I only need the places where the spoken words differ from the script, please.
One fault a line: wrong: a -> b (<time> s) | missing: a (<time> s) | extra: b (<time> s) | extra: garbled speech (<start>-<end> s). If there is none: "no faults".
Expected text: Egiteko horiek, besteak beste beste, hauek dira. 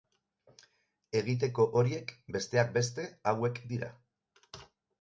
missing: beste (3.1 s)